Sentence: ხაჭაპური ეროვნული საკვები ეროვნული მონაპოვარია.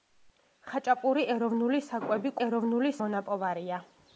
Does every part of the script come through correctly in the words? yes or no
yes